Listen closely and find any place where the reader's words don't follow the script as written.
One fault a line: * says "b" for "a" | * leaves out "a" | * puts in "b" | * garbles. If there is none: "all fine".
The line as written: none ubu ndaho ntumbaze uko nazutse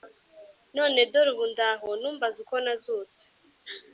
* puts in "dore"